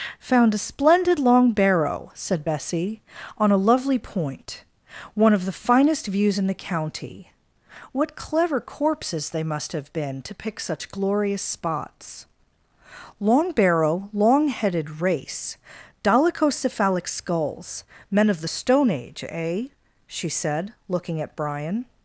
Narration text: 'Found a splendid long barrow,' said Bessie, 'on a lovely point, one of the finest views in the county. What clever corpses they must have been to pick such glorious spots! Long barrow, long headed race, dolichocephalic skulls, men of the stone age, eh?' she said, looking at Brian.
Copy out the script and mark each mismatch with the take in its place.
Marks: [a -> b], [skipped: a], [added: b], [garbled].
'Found a splendid long barrow,' said Bessie, 'on a lovely point, one of the finest views in the county. What clever corpses they must have been to pick such glorious spots! Long barrow, long headed race, dolichocephalic skulls, men of the stone age, eh?' she said, looking at Brian.